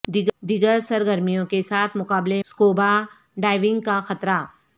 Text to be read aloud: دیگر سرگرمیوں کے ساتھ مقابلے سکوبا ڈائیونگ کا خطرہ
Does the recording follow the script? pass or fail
pass